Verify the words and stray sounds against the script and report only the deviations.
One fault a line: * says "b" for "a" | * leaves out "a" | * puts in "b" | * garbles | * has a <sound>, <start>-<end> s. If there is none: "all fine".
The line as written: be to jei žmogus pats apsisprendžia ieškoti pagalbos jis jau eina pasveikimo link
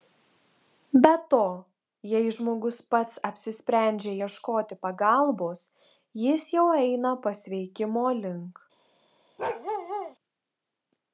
* has a bark, 9.4-10.2 s